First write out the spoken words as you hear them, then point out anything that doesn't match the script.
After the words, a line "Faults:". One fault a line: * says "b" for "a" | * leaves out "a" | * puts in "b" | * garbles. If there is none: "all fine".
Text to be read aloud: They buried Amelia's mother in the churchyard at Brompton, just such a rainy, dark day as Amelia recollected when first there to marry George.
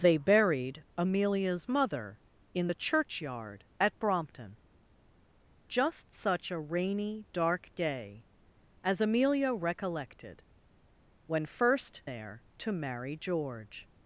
They buried Amelia's mother in the churchyard at Brompton, just such a rainy, dark day as Amelia recollected when first there to marry George.
Faults:
all fine